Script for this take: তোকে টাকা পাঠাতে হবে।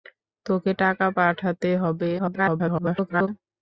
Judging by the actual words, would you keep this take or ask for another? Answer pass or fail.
fail